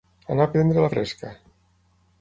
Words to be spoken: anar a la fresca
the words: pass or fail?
fail